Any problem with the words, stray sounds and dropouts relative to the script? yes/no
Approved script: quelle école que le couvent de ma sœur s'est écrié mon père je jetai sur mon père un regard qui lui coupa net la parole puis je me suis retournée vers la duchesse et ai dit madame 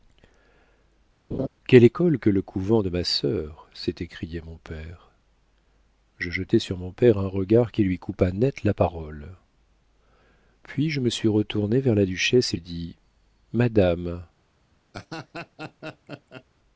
yes